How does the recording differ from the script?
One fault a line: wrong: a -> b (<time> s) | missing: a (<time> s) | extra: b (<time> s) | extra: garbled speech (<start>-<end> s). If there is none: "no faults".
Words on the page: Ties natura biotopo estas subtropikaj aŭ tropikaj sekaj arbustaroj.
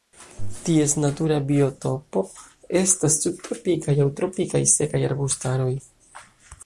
no faults